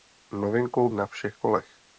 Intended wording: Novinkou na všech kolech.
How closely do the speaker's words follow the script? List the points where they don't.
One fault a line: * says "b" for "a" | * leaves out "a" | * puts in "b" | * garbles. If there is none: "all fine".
all fine